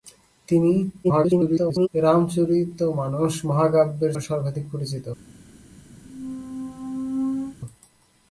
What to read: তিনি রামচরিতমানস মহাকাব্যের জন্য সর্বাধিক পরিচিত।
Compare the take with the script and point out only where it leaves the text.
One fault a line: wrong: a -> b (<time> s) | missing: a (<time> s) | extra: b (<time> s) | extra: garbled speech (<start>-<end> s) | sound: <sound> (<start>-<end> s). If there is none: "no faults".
extra: garbled speech (1.0-1.9 s)
missing: জন্য (4.1 s)
sound: squeak (6.0-7.6 s)